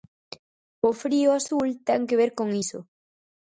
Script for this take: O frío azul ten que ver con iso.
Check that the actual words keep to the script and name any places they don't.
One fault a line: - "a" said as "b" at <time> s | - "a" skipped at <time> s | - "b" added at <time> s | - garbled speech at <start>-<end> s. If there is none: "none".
none